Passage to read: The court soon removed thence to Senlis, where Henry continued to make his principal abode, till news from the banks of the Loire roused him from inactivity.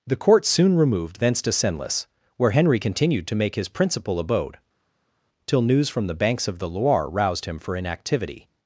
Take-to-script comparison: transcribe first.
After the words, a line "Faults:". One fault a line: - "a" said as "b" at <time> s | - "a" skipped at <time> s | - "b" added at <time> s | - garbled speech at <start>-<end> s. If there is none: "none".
The court soon removed thence to Senlis, where Henry continued to make his principal abode, till news from the banks of the Loire roused him for inactivity.
Faults:
- "from" said as "for" at 7.6 s